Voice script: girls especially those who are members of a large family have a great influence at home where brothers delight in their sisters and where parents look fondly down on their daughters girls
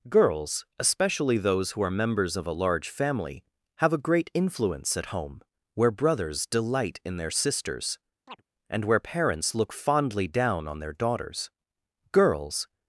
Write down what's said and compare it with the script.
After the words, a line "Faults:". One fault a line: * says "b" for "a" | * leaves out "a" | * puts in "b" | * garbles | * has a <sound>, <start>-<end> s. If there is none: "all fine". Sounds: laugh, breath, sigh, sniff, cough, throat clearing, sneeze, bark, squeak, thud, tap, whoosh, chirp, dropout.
girls especially those who are members of a large family have a great influence at home where brothers delight in their sisters and where parents look fondly down on their daughters girls
Faults:
* has a chirp, 8.3-8.4 s